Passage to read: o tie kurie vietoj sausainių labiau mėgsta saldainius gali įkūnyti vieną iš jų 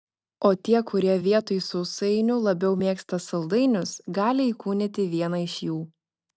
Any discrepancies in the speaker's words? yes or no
no